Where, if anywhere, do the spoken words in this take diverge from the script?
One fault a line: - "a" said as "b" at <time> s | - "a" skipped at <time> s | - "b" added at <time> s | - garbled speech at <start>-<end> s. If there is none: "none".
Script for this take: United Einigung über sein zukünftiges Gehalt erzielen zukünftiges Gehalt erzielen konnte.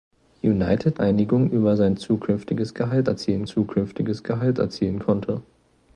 none